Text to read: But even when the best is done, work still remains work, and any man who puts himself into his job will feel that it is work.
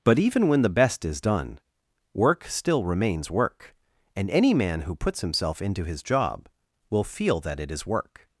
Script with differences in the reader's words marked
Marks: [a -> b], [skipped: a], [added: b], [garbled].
But even when the best is done, work still remains work, and any man who puts himself into his job will feel that it is work.